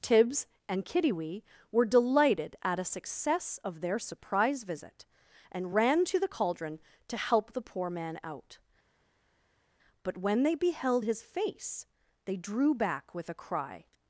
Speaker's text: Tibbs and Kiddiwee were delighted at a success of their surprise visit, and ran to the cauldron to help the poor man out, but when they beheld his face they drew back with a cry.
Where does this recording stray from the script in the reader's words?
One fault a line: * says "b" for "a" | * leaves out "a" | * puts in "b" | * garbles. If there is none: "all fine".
all fine